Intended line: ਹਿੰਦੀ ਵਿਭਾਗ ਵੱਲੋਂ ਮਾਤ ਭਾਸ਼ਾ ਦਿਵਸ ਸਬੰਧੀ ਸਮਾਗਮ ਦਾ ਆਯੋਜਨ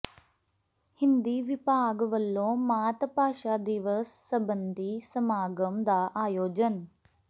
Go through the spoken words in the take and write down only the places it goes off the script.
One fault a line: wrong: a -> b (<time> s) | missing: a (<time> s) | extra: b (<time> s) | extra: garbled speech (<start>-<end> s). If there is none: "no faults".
no faults